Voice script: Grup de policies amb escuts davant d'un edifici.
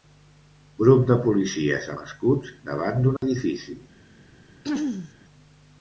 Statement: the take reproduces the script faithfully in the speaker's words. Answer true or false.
true